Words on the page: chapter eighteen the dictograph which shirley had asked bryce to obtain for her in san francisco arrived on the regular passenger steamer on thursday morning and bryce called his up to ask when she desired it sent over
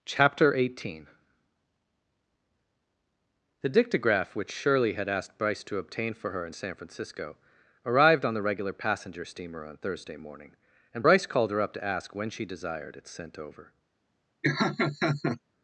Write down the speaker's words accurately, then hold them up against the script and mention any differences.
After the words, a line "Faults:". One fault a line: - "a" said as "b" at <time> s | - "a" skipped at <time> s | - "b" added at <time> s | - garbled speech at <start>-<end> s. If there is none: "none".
chapter eighteen the dictograph which shirley had asked bryce to obtain for her in san francisco arrived on the regular passenger steamer on thursday morning and bryce called her up to ask when she desired it sent over
Faults:
- "his" said as "her" at 11.5 s